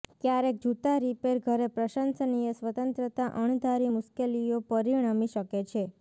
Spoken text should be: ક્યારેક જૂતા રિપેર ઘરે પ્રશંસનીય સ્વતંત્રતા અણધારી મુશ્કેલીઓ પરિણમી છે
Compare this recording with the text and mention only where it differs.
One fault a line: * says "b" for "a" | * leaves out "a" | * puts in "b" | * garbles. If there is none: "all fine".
* puts in "શકે"